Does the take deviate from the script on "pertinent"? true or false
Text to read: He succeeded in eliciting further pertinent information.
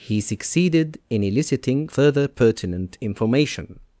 false